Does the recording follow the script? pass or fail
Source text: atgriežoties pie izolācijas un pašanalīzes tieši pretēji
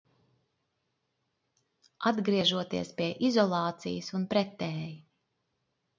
fail